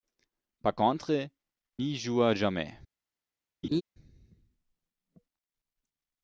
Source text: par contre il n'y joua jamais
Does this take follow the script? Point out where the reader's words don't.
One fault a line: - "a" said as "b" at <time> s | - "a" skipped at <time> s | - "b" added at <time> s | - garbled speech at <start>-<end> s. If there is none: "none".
- "il" skipped at 1.3 s